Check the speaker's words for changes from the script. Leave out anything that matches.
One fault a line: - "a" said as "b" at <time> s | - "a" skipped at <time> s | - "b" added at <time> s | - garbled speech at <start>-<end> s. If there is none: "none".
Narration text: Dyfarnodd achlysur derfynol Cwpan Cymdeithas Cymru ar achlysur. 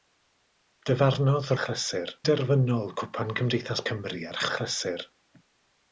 none